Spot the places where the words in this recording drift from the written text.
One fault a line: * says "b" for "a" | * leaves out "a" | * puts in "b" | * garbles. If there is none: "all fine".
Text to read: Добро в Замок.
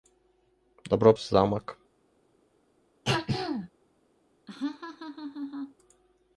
all fine